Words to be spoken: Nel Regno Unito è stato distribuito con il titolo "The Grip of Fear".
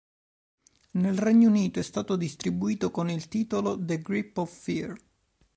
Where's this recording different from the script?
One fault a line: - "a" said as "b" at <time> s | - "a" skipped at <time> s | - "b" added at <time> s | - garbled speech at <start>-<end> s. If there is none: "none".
none